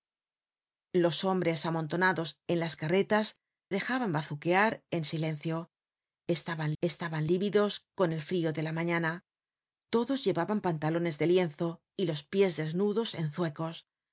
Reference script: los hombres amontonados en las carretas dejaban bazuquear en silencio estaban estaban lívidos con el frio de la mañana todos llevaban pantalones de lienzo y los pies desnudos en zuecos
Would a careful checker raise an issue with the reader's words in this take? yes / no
no